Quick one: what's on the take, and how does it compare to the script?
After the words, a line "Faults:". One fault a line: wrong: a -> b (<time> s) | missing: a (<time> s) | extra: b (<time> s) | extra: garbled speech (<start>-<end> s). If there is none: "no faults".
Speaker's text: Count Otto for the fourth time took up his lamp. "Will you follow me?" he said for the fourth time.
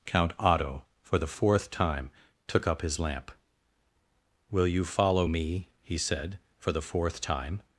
Count Otto for the fourth time took up his lamp. "Will you follow me?" he said for the fourth time.
Faults:
no faults